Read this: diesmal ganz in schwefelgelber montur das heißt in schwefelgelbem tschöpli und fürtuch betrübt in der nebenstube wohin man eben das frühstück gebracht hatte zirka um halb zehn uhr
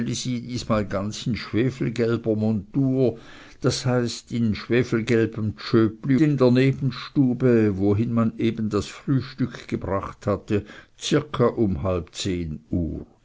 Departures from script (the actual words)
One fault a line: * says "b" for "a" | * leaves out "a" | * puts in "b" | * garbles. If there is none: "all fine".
* leaves out "und fürtuch betrübt"